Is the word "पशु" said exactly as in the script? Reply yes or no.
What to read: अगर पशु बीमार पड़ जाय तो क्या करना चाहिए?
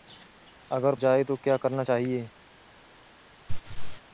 no